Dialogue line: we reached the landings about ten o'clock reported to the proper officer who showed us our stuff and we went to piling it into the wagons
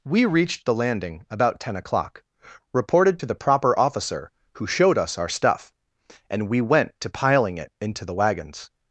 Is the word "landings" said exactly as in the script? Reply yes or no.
no